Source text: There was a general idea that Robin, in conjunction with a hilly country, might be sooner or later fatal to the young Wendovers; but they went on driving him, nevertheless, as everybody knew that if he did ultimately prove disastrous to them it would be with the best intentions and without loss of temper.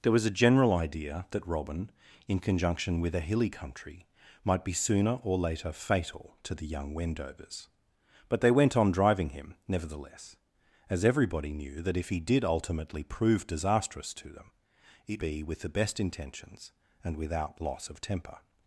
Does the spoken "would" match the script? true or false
false